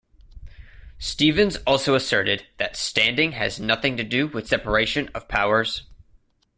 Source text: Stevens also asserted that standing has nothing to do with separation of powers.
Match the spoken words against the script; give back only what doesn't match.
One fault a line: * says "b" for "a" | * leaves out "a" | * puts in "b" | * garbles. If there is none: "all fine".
all fine